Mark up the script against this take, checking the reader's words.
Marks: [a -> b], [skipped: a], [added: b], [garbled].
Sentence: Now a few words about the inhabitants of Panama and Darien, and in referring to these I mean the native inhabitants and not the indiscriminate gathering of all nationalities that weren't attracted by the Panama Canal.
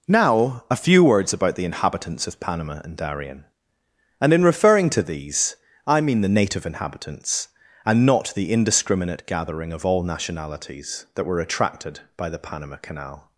Now a few words about the inhabitants of Panama and Darien, and in referring to these I mean the native inhabitants and not the indiscriminate gathering of all nationalities that [weren't -> were] attracted by the Panama Canal.